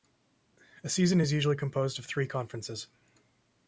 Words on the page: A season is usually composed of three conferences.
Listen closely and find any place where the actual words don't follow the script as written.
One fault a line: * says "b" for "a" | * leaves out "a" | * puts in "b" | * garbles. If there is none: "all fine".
all fine